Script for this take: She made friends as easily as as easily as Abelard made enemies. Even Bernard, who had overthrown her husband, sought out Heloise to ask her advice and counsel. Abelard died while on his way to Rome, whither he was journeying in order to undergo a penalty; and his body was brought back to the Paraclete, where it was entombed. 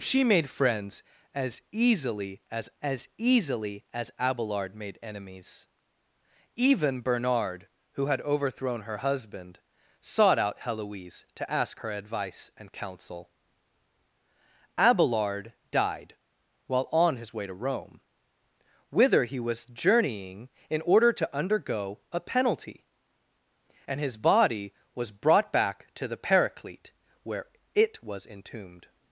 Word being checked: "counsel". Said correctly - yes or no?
yes